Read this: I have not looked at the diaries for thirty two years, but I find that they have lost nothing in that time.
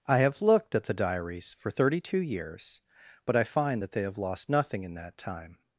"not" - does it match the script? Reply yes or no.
no